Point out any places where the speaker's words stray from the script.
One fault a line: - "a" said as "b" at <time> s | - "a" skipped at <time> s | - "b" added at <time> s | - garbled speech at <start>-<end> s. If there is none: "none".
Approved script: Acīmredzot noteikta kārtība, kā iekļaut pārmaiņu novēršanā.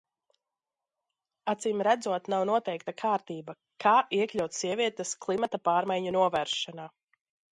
- "nav" added at 2.3 s
- "sievietes klimata" added at 4.6 s